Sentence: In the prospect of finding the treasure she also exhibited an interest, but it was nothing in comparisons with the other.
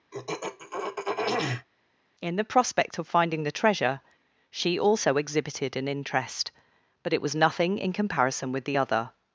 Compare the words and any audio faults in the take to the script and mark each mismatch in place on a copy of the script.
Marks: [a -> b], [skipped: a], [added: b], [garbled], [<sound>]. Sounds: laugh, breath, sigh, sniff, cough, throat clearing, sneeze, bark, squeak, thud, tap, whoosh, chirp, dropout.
[throat clearing] In the prospect of finding the treasure she also exhibited an interest, but it was nothing in [comparisons -> comparison] with the other.